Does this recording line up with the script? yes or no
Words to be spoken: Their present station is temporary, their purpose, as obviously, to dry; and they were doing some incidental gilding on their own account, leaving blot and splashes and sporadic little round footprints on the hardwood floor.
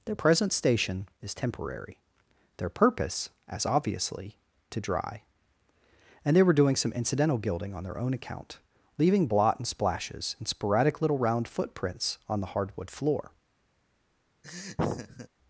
yes